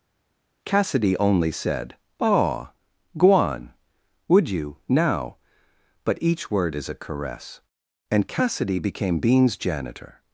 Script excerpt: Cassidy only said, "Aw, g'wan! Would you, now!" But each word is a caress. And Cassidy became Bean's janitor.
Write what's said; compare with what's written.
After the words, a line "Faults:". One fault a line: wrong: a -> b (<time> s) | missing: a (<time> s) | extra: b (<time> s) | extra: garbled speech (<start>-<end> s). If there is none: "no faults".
Cassidy only said, "Aw, g'wan! Would you, now!" But each word is a caress. And Cassidy became Bean's janitor.
Faults:
no faults